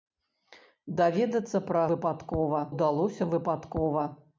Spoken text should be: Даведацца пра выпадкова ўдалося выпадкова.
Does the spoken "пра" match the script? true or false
true